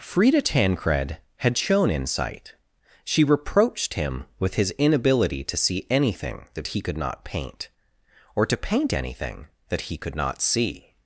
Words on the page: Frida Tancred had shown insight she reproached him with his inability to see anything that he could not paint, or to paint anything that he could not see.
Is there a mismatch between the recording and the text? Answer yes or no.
no